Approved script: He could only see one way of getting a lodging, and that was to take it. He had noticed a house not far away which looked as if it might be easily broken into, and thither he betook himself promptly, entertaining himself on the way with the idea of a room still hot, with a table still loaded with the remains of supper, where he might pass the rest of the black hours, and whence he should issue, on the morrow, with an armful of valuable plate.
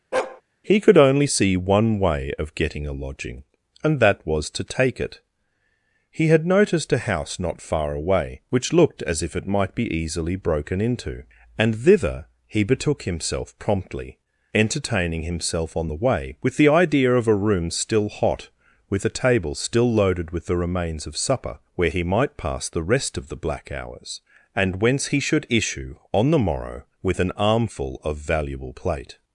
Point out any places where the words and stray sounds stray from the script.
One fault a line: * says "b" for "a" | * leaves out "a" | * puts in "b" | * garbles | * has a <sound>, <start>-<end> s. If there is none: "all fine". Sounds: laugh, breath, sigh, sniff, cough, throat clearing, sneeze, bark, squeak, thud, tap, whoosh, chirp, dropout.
* has a bark, 0.1-0.4 s